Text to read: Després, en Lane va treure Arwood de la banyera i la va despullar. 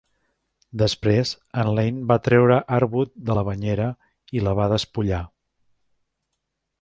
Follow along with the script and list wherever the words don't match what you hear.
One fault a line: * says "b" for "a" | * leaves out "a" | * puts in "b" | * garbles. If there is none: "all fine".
all fine